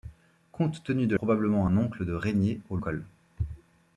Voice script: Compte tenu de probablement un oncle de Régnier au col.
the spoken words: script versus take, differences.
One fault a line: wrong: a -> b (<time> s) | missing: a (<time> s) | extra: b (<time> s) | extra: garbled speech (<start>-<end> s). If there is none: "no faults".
no faults